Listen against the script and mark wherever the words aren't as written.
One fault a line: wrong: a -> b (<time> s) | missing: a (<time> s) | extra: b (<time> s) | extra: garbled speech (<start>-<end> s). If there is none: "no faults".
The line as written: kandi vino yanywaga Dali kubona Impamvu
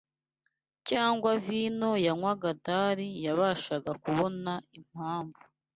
wrong: kandi -> cyangwa (0.9 s)
extra: yabashaga (3.2 s)